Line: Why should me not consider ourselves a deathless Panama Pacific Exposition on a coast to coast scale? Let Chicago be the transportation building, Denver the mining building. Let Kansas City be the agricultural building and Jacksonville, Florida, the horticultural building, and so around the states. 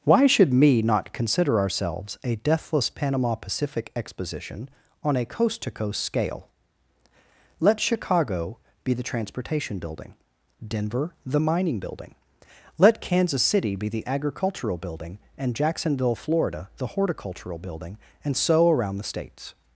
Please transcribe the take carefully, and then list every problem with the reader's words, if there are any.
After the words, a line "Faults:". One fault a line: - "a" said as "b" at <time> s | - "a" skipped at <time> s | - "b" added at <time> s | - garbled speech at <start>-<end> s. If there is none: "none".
Why should me not consider ourselves a deathless Panama Pacific Exposition on a coast to coast scale? Let Chicago be the transportation building, Denver the mining building. Let Kansas City be the agricultural building and Jacksonville, Florida, the horticultural building, and so around the states.
Faults:
none